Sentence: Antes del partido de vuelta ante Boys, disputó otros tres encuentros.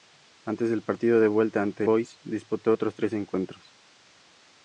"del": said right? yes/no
yes